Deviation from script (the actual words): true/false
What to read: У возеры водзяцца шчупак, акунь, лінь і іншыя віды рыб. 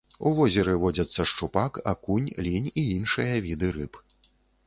false